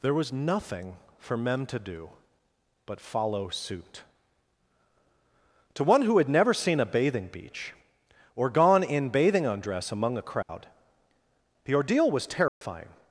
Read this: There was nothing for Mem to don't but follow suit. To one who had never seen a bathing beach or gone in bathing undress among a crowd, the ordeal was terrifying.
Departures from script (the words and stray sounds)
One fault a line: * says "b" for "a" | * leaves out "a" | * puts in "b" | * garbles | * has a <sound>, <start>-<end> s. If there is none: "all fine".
* says "do" for "don't"
* has a dropout, 10.4-10.5 s
* has a dropout, 12.5-12.6 s